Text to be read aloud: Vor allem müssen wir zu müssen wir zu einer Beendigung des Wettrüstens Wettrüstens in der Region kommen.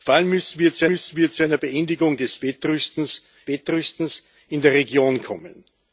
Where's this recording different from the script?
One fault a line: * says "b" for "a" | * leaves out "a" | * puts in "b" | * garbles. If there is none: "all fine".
all fine